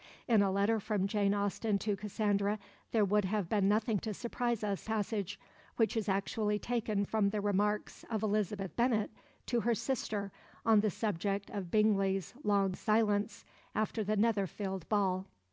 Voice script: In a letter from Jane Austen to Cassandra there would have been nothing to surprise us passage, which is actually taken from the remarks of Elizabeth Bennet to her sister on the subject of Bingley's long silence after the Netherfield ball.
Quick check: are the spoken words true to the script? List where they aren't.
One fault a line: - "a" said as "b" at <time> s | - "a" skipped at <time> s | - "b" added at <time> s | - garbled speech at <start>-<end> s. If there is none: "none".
none